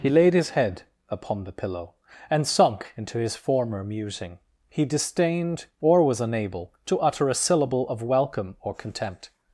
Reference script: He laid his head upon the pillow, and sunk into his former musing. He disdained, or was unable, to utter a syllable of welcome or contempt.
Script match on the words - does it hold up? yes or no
yes